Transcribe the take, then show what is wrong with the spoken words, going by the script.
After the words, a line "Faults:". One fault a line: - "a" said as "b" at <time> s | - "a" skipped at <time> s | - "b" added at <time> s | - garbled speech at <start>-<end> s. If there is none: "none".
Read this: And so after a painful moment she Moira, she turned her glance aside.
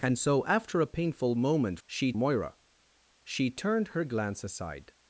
And so after a painful moment she Moira, she turned her glance aside.
Faults:
none